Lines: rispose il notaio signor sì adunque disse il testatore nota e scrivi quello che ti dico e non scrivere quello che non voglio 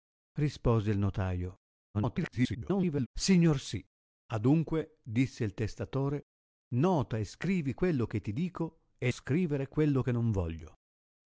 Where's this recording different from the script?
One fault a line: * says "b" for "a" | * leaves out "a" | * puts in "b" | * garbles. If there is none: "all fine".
* garbles
* leaves out "non"